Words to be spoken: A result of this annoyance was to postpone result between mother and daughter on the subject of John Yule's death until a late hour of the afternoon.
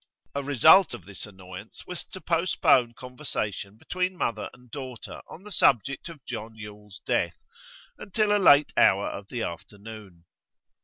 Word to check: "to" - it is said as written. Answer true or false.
true